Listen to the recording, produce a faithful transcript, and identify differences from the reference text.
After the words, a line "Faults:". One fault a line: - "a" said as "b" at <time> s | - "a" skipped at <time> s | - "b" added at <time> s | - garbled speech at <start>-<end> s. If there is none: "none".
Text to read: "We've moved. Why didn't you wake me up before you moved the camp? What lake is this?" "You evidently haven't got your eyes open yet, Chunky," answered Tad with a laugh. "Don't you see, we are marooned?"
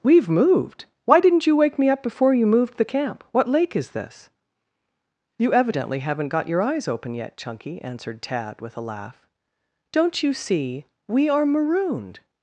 "We've moved. Why didn't you wake me up before you moved the camp? What lake is this?" "You evidently haven't got your eyes open yet, Chunky," answered Tad with a laugh. "Don't you see, we are marooned?"
Faults:
none